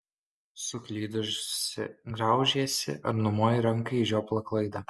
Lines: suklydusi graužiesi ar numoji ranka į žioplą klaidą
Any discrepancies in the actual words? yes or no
no